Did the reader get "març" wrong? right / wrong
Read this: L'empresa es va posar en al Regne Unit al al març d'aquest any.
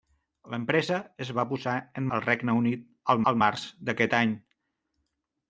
right